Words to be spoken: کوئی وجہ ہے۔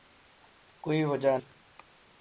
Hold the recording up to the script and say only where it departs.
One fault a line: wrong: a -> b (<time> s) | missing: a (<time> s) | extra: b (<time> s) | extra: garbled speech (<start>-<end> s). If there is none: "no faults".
no faults